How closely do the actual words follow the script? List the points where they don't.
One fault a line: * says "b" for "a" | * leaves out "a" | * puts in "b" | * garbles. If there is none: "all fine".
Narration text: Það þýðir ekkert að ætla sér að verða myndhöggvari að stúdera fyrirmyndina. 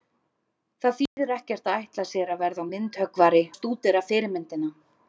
all fine